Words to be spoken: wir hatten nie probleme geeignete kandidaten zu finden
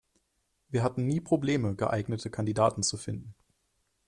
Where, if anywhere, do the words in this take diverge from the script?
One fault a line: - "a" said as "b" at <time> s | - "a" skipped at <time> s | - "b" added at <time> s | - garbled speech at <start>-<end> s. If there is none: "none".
none